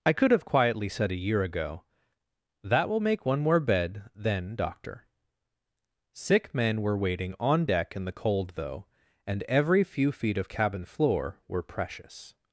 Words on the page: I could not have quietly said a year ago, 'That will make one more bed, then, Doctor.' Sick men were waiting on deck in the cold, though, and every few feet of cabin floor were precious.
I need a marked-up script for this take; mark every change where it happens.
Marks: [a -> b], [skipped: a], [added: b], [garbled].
I could [skipped: not] have quietly said a year ago, 'That will make one more bed, then, Doctor.' Sick men were waiting on deck in the cold, though, and every few feet of cabin floor were precious.